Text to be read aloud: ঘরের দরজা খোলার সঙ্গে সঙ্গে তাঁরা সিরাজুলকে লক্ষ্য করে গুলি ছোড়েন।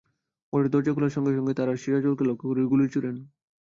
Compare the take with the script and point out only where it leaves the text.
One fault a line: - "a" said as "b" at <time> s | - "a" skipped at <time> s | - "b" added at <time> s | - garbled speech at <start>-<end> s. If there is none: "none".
none